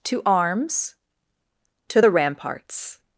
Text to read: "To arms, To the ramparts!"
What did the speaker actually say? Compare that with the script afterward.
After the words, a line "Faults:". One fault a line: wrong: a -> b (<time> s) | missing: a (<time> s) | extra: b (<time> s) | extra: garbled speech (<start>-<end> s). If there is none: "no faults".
"To arms, To the ramparts!"
Faults:
no faults